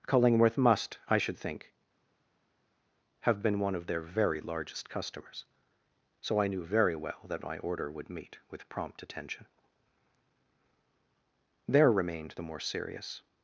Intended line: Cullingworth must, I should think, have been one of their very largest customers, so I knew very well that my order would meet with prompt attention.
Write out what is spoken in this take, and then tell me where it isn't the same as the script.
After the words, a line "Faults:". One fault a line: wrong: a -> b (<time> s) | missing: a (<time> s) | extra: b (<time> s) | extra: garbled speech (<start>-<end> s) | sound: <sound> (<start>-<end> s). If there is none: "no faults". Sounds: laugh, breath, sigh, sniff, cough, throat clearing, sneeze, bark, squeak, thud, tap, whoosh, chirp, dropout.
Cullingworth must, I should think, have been one of their very largest customers, so I knew very well that my order would meet with prompt attention. There remained the more serious
Faults:
extra: There remained the more serious (11.7 s)